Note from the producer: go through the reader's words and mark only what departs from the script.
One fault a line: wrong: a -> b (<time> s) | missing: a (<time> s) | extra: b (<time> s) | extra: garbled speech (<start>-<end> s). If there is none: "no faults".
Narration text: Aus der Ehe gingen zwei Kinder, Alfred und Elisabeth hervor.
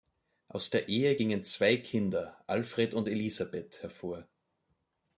no faults